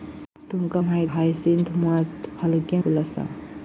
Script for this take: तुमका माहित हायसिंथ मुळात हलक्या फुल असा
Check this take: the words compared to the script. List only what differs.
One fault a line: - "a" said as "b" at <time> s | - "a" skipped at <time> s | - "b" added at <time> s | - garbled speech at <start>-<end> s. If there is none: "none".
none